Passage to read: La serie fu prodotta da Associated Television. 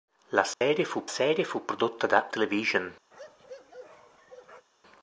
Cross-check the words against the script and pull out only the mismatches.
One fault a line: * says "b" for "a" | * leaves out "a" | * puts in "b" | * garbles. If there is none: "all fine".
* puts in "serie fu"
* leaves out "Associated"